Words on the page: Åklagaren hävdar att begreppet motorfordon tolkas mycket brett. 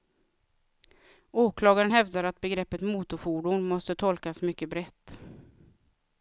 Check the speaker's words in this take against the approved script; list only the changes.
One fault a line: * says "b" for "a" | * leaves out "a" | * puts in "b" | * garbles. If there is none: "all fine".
* puts in "måste"